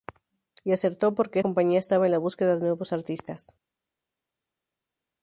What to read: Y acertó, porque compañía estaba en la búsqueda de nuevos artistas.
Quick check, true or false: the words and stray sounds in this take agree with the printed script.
true